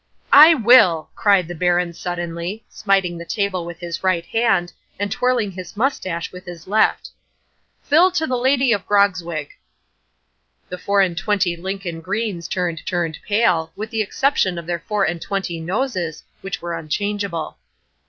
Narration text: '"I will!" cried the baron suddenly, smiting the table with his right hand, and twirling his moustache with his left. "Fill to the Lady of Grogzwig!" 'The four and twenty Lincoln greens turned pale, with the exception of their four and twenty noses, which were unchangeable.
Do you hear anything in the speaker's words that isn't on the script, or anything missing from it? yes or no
yes